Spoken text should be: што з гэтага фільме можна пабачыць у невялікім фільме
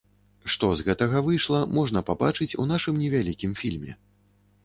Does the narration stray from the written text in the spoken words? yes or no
yes